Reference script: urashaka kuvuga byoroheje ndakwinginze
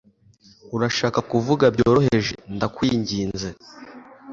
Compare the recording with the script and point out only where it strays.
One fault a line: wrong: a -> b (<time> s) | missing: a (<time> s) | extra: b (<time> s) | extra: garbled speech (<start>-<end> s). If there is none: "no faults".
no faults